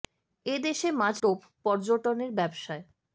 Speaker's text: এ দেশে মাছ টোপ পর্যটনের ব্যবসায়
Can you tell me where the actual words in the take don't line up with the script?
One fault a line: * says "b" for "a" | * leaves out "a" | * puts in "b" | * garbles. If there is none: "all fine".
all fine